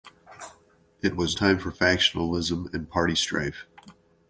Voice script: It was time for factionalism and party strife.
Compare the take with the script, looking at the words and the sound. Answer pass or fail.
pass